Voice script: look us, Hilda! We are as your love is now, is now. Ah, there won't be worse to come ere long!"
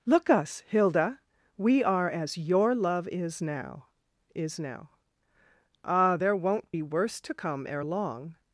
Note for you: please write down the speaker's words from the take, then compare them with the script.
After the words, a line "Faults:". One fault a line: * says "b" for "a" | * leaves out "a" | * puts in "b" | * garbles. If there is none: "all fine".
look us, Hilda! We are as your love is now, is now. Ah, there won't be worse to come ere long!"
Faults:
all fine